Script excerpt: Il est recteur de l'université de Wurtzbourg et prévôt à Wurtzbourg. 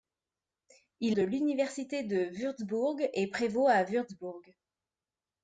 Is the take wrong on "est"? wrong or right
wrong